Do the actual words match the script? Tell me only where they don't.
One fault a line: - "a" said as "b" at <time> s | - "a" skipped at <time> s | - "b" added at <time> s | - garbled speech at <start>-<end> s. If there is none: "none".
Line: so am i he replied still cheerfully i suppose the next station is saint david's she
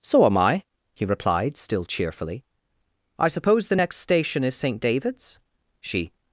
none